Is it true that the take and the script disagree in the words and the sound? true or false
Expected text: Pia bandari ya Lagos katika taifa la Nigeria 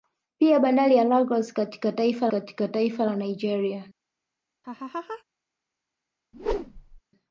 true